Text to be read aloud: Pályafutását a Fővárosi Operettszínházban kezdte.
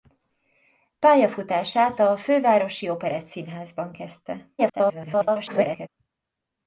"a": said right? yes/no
yes